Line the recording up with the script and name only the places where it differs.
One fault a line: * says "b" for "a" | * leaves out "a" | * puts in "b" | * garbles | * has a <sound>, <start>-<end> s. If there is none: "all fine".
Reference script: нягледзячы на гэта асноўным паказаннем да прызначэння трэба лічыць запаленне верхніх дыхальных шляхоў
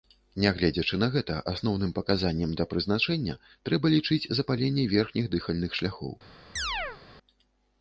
* has a chirp, 6.6-7.0 s